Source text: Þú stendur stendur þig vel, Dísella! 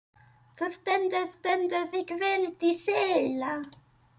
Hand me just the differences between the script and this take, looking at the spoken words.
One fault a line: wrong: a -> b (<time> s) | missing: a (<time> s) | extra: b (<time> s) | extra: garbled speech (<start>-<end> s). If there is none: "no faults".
no faults